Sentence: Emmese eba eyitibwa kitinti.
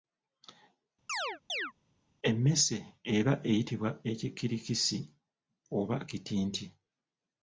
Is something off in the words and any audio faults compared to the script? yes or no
yes